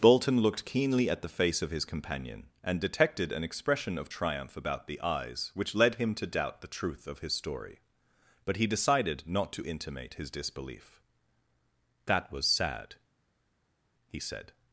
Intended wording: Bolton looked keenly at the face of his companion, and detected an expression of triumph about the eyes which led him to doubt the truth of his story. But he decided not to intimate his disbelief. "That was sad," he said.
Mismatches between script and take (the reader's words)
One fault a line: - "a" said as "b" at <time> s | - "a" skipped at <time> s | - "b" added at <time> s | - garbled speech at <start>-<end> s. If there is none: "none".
none